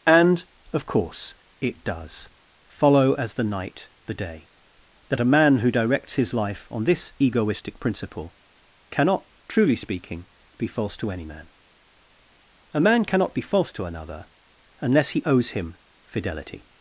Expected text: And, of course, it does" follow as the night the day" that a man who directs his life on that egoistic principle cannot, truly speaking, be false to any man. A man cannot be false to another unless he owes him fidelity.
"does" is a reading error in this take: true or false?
false